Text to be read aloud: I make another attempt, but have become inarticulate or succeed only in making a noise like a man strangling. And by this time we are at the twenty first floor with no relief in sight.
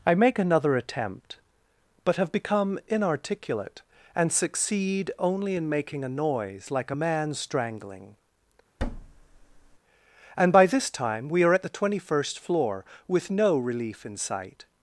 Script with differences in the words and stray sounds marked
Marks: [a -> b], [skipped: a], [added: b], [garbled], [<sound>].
I make another attempt, but have become inarticulate [or -> and] succeed only in making a noise like a man strangling. [thud] And by this time we are at the twenty first floor with no relief in sight.